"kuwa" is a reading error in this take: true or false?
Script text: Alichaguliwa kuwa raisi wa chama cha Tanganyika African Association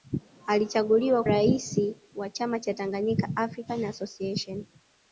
true